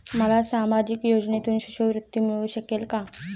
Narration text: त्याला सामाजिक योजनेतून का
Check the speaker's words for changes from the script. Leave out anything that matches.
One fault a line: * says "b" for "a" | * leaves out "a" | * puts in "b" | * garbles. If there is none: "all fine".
* says "मला" for "त्याला"
* puts in "शिष्यवृत्ती मिळू शकेल"